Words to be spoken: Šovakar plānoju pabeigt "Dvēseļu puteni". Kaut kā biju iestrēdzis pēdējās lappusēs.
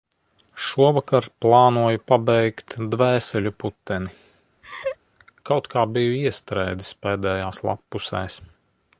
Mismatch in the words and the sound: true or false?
true